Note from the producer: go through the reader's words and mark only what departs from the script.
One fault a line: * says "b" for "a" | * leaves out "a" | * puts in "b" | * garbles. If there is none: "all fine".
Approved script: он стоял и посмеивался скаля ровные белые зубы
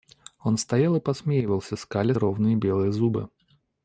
all fine